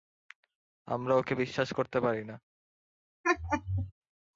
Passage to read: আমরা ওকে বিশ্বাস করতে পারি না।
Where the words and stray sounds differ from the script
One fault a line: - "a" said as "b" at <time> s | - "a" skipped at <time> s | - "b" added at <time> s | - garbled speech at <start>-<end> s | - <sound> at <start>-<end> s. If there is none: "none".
- laugh at 3.2-3.9 s